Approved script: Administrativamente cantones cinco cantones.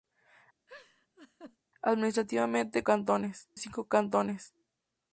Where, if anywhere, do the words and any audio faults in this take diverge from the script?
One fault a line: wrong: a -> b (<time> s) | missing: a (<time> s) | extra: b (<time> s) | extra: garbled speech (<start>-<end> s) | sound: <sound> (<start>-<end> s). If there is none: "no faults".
sound: laugh (0.7-1.6 s)